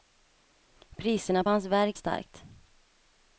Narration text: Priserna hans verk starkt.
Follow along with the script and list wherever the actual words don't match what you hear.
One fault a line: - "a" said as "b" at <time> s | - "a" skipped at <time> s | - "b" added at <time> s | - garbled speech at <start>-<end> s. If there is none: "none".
none